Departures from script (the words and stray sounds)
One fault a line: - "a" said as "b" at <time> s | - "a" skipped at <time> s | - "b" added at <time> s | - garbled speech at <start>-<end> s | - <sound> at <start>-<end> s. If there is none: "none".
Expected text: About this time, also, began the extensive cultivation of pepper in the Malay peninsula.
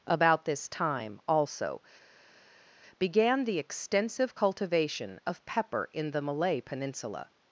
none